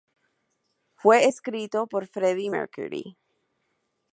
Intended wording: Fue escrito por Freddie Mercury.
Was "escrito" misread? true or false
false